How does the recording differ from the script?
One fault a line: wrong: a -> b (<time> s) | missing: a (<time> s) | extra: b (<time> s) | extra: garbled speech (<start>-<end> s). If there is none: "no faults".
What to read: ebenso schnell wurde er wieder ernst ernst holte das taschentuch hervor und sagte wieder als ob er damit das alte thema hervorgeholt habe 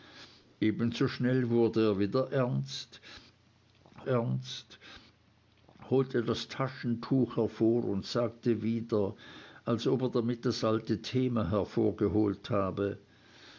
no faults